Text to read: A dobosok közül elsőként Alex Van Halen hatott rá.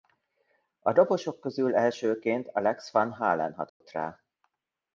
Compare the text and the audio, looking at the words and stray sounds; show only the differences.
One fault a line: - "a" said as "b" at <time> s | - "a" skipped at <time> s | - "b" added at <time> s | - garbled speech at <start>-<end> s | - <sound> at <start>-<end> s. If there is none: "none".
- dropout at 3.7-3.8 s